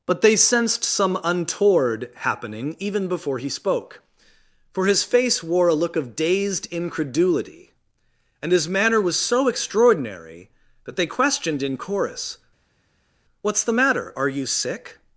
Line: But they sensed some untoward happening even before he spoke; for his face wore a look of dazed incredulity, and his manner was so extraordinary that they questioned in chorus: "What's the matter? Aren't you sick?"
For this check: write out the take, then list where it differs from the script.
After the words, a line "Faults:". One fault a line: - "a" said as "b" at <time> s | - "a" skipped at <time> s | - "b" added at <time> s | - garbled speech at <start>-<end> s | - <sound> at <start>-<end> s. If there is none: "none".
But they sensed some untoward happening even before he spoke; for his face wore a look of dazed incredulity, and his manner was so extraordinary that they questioned in chorus: "What's the matter? Are you sick?"
Faults:
- "Aren't" said as "Are" at 14.2 s